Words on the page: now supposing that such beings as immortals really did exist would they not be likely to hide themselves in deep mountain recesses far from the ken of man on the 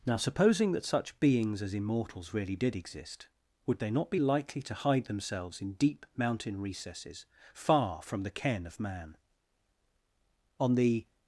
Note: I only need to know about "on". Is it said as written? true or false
true